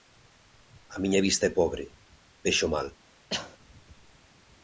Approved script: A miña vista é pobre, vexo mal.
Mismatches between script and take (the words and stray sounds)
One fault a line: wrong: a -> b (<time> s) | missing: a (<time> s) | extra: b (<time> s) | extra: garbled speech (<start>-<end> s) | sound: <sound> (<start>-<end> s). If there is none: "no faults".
sound: cough (3.3-3.6 s)